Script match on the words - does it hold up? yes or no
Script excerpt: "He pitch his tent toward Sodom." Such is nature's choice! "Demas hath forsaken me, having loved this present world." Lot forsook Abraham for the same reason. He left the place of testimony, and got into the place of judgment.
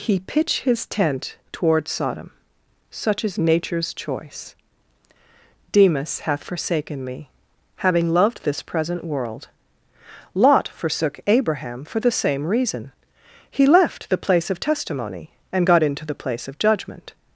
yes